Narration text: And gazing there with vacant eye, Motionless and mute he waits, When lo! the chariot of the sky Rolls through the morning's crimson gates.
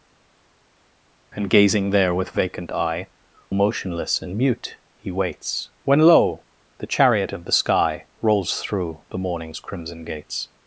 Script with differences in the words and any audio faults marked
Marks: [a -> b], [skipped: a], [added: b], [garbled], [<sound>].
And gazing there with vacant eye, Motionless and mute he waits, When lo! the chariot of the sky Rolls through the morning's crimson gates.